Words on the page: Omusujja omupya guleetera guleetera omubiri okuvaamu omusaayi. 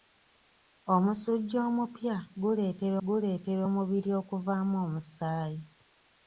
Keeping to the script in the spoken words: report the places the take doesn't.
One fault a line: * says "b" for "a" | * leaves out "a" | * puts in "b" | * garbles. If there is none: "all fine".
all fine